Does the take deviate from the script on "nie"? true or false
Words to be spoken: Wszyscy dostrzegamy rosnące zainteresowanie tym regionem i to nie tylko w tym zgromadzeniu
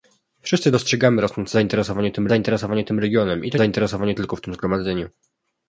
true